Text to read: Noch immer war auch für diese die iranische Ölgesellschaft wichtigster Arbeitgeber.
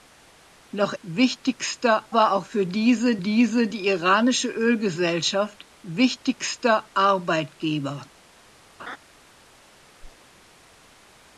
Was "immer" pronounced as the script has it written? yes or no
no